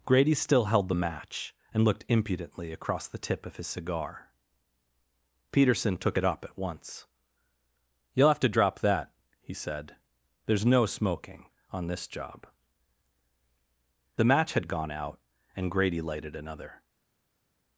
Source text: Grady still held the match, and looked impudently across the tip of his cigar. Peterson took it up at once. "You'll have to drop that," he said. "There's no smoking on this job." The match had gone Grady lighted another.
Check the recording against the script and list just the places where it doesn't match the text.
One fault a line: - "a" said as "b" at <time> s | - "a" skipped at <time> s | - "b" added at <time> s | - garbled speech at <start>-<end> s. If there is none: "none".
- "out and" added at 14.9 s